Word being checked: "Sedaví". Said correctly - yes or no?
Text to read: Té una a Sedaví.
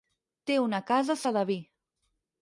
yes